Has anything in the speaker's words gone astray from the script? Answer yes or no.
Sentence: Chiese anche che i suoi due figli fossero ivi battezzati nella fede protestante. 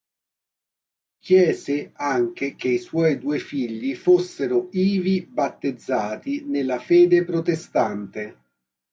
no